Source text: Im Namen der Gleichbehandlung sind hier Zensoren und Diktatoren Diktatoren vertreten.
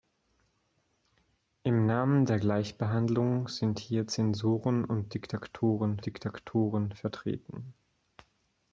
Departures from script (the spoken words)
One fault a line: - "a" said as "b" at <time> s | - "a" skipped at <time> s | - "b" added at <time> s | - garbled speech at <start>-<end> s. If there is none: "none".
none